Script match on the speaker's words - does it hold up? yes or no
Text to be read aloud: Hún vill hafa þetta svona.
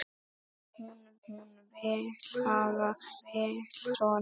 no